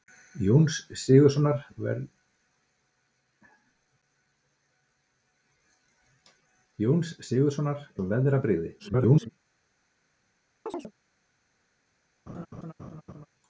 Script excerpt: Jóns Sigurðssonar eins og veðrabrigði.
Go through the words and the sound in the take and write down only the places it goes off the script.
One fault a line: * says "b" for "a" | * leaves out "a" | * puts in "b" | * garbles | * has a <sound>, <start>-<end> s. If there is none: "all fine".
* leaves out "eins"
* garbles
* has a chirp, 10.7-10.9 s
* has a laugh, 12.3-13.3 s